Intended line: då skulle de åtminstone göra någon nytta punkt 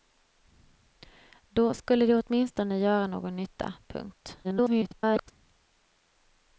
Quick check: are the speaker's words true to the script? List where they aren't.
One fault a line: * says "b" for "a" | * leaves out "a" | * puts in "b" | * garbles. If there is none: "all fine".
* garbles